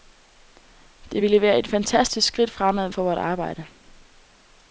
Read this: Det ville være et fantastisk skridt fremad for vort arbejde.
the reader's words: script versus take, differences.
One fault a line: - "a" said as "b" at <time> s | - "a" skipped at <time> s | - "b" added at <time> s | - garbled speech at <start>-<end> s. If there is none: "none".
none